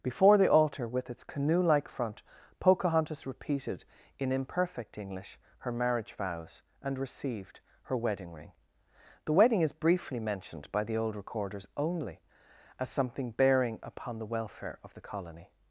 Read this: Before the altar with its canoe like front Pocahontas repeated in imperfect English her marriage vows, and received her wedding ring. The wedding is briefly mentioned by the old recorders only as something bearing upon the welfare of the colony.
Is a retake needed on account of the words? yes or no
no